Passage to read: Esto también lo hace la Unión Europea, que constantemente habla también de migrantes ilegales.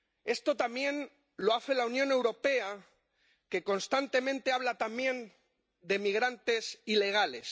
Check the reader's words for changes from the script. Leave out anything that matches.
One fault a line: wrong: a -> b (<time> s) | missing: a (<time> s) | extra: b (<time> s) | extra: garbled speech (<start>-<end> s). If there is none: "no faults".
no faults